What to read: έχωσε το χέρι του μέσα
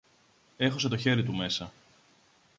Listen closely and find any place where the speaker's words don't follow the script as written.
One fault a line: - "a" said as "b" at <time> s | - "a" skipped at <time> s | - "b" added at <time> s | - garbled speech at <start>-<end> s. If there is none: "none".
none